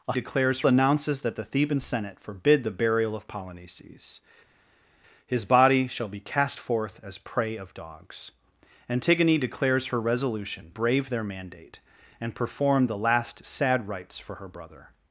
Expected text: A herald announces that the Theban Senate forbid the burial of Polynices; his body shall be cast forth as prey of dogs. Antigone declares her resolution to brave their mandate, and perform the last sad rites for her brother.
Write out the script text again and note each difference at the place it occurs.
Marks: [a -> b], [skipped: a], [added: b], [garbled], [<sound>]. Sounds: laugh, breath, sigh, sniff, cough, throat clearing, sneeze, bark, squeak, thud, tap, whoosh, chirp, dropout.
A [herald -> declares] announces that the Theban Senate forbid the burial of Polynices; his body shall be cast forth as prey of dogs. Antigone declares her resolution [skipped: to] brave their mandate, and perform the last sad rites for her brother.